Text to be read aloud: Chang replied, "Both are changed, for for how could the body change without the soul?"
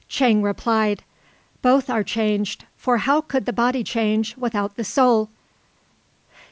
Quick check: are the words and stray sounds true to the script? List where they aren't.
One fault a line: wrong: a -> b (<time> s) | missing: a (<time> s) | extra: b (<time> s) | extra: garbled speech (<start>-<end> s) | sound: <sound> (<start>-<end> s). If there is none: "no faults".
missing: for (3.0 s)